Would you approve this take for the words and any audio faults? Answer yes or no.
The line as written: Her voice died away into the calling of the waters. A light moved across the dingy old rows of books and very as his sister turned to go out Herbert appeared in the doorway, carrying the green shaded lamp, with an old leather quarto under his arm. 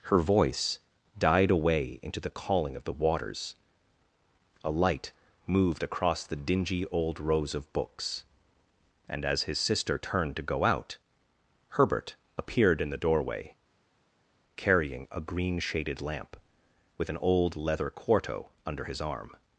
no